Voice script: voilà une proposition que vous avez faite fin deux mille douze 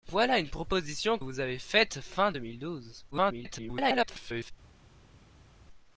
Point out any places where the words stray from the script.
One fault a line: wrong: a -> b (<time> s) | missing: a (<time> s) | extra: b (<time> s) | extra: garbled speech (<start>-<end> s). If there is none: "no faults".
missing: que (1.2 s)
extra: garbled speech (3.1-4.5 s)